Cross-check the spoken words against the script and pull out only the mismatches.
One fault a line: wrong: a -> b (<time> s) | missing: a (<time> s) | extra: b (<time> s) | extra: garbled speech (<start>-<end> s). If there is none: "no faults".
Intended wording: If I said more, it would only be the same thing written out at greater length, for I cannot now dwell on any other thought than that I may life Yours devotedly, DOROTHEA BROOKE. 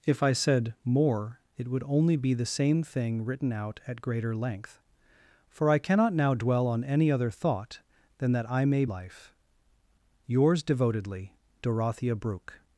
no faults